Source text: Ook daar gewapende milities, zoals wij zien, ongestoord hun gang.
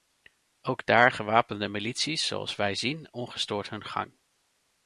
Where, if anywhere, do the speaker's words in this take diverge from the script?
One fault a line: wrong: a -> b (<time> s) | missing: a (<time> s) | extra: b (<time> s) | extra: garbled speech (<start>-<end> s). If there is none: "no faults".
no faults